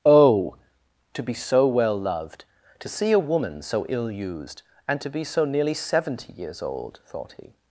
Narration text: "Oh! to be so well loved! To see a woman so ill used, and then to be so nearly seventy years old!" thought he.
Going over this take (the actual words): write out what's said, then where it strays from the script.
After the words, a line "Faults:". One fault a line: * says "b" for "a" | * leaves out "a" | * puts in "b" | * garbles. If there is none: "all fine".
"Oh! to be so well loved! To see a woman so ill used, and to be so nearly seventy years old!" thought he.
Faults:
* leaves out "then"